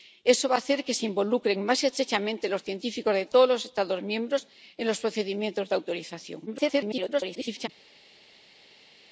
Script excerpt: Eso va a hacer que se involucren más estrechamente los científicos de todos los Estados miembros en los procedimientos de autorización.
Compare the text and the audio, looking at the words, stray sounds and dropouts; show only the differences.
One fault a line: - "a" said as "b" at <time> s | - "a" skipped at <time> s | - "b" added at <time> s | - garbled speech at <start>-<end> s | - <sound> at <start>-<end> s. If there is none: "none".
- garbled speech at 6.5-7.7 s